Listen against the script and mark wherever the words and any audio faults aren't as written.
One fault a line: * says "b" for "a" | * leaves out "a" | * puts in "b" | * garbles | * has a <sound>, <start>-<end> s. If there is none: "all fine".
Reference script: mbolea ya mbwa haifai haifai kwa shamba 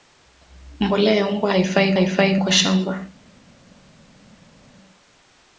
all fine